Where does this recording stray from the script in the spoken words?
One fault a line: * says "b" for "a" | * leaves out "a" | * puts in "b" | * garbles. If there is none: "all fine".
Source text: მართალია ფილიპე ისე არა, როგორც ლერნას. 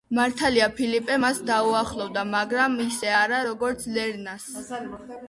* puts in "მას დაუახლოვდა მაგრამ"